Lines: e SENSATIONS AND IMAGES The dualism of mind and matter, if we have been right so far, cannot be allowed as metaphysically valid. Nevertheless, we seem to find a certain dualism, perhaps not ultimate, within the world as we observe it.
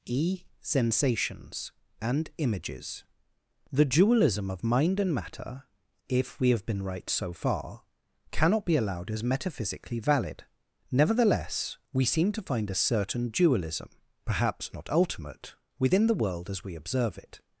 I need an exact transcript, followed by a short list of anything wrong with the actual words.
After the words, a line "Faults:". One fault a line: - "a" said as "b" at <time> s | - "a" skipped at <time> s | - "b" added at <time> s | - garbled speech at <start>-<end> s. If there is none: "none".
e SENSATIONS AND IMAGES The dualism of mind and matter, if we have been right so far, cannot be allowed as metaphysically valid. Nevertheless, we seem to find a certain dualism, perhaps not ultimate, within the world as we observe it.
Faults:
none